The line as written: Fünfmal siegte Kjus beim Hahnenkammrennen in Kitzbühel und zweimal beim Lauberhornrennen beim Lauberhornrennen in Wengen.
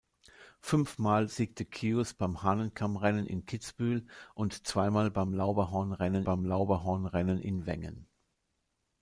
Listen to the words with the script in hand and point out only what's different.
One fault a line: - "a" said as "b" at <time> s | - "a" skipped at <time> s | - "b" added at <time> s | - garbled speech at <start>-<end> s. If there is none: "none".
none